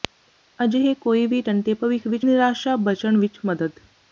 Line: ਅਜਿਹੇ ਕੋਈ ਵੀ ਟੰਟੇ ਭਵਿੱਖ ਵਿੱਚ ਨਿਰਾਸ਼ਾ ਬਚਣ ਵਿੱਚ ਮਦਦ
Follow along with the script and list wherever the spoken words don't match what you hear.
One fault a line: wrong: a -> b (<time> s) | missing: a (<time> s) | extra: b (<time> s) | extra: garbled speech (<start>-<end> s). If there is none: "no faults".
no faults